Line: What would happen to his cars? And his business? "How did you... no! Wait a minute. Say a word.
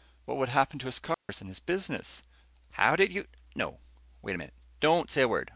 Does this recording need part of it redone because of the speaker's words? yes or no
yes